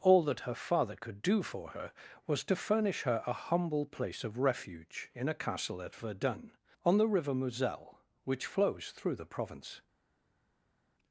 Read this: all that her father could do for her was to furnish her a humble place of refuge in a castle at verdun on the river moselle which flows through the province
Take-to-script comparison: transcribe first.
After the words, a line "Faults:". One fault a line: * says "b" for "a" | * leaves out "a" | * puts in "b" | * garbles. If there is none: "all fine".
all that her father could do for her was to furnish her a humble place of refuge in a castle at verdun on the river moselle which flows through the province
Faults:
all fine